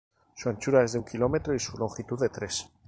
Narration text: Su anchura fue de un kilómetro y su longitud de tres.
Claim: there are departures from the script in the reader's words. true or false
true